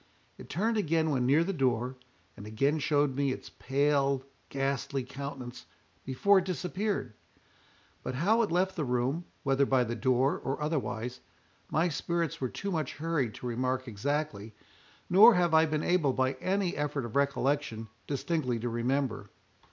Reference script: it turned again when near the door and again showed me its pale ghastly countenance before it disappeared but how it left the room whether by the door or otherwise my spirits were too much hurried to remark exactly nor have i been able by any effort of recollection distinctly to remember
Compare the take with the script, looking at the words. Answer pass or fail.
pass